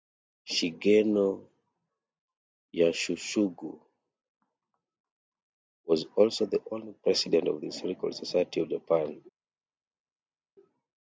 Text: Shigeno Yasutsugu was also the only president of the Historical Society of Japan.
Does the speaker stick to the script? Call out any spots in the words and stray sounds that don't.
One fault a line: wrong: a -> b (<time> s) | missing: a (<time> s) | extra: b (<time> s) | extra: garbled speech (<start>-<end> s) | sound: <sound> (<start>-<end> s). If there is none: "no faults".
no faults